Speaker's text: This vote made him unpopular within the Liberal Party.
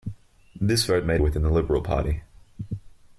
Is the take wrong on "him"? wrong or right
wrong